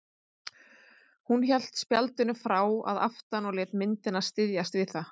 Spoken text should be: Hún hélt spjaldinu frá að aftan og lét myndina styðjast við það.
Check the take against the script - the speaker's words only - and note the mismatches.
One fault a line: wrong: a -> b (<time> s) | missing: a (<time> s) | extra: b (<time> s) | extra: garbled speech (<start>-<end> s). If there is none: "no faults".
no faults